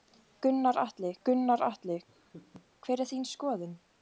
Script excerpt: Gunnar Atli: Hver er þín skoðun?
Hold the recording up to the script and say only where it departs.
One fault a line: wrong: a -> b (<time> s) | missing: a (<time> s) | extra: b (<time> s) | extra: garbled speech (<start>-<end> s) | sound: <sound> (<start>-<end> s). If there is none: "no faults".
extra: gunnar Atli (1.3 s)
sound: laugh (2.1-2.7 s)